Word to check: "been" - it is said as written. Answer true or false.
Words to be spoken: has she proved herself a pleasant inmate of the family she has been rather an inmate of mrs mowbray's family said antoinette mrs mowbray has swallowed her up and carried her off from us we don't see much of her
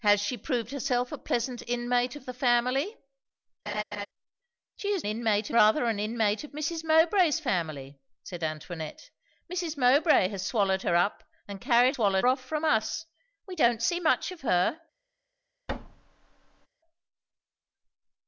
false